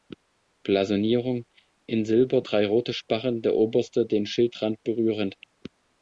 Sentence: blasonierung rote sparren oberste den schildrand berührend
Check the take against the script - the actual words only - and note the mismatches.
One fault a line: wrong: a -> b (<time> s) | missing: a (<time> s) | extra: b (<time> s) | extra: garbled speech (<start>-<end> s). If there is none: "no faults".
extra: in silber drei (1.9 s)
extra: der (3.4 s)